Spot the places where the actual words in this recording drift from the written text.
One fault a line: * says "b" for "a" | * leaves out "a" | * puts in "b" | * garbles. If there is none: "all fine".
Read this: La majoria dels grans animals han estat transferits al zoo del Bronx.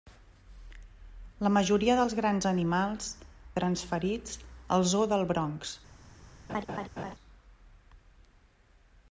* leaves out "han estat"